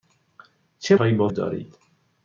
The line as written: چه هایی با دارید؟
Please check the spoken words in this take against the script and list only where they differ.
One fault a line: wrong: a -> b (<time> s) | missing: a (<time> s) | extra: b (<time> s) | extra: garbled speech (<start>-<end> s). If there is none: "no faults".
no faults